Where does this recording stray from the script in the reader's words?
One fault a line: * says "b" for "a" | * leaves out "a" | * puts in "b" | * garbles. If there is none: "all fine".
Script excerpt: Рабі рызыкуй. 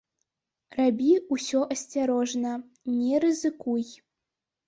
* puts in "ўсё асцярожна не"